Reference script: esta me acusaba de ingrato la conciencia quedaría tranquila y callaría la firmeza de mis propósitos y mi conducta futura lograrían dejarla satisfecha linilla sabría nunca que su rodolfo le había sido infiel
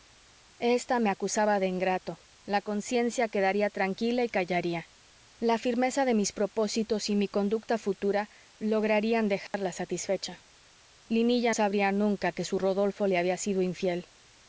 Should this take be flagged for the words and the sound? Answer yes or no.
yes